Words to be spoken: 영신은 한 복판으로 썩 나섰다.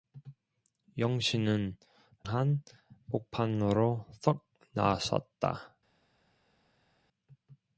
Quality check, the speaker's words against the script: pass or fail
pass